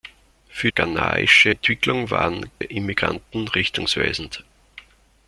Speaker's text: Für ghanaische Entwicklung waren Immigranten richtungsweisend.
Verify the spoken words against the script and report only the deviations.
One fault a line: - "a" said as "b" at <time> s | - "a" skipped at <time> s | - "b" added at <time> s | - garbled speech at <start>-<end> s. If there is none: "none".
none